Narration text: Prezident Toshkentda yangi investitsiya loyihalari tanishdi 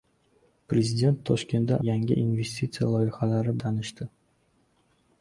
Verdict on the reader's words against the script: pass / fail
pass